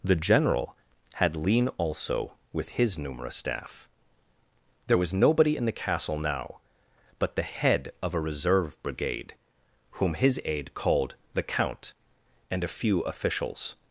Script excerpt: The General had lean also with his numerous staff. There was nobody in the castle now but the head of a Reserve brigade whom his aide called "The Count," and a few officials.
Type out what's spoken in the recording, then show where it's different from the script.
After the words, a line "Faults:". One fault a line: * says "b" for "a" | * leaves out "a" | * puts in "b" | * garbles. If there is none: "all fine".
The General had lean also with his numerous staff. There was nobody in the castle now but the head of a Reserve brigade whom his aide called "The Count," and a few officials.
Faults:
all fine